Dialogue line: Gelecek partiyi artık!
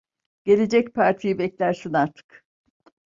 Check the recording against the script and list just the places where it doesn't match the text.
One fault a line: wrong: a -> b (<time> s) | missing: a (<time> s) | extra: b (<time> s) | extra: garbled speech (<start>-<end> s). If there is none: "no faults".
extra: beklersin (1.4 s)